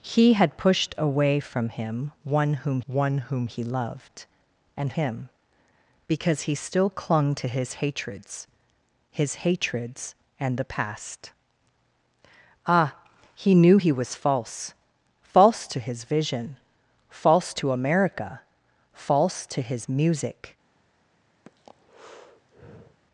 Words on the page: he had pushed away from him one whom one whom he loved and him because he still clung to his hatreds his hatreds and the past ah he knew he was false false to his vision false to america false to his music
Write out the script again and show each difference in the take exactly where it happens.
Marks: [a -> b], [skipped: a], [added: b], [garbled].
he had pushed away from him one whom one whom he loved and him because he still clung to his hatreds his hatreds and the past ah he knew he was false false to his vision false to america false to his music